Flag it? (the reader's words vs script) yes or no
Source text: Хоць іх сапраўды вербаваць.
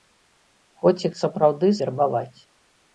no